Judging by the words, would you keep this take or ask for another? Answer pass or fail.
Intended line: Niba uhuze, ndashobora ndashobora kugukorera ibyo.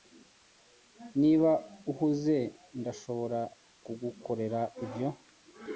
fail